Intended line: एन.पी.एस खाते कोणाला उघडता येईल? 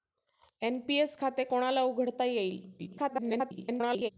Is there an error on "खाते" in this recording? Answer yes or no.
no